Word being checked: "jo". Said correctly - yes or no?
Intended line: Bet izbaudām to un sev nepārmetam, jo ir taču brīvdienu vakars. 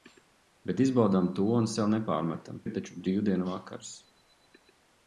no